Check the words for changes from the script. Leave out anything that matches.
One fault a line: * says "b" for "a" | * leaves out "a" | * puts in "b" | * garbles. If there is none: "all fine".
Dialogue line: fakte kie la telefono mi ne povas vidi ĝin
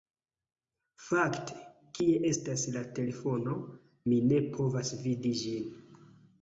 * puts in "estas"